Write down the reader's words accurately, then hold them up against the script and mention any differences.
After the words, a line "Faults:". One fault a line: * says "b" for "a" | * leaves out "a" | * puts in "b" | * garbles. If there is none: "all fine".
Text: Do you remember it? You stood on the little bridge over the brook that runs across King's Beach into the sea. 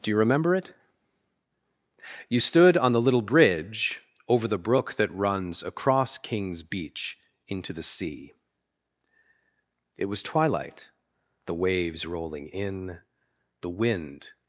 Do you remember it? You stood on the little bridge over the brook that runs across King's Beach into the sea. It was twilight, the waves rolling in, the wind
Faults:
* puts in "It was twilight the waves rolling in the wind"